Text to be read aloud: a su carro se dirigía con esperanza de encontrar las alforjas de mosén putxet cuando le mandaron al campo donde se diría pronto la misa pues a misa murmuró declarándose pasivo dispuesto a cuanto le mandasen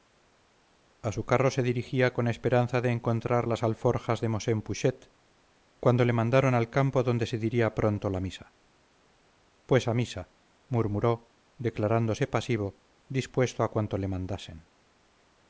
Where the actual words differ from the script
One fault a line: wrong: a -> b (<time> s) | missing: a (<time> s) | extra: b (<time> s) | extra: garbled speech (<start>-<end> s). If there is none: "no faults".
no faults